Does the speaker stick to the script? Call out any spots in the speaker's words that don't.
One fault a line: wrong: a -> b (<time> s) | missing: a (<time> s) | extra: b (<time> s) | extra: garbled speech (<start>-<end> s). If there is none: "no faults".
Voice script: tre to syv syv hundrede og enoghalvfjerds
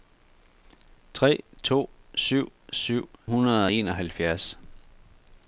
no faults